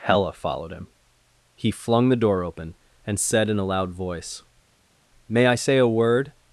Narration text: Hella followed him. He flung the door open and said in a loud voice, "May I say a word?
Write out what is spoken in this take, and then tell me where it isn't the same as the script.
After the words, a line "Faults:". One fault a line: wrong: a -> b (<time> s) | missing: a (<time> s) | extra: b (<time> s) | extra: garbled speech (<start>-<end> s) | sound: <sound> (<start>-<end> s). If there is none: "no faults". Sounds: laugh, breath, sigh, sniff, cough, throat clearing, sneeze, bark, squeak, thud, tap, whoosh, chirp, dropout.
Hella followed him. He flung the door open and said in a loud voice, "May I say a word?
Faults:
no faults